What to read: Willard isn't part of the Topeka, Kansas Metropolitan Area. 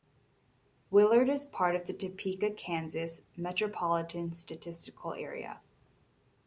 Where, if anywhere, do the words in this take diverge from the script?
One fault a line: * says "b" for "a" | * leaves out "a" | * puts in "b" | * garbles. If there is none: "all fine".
* says "is" for "isn't"
* puts in "Statistical"